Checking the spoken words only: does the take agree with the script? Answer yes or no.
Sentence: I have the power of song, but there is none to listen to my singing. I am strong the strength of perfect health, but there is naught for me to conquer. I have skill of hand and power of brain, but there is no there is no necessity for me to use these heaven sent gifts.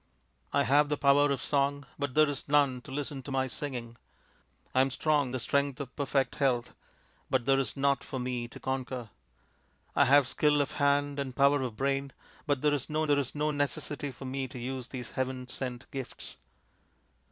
yes